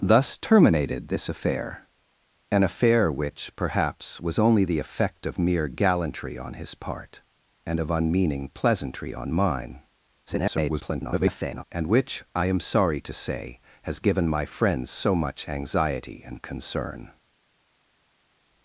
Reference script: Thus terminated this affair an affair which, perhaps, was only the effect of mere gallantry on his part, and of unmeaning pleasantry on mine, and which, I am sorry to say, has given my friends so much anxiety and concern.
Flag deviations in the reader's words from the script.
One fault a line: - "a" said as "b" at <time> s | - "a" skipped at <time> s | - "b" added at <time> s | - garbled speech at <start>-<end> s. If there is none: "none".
- garbled speech at 10.3-11.6 s